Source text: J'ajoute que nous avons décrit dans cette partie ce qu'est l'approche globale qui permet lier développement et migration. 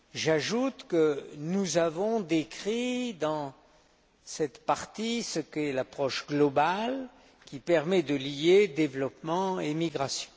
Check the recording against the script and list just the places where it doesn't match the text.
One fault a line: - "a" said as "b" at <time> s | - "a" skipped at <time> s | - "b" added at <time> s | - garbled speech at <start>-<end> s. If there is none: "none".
- "de" added at 8.0 s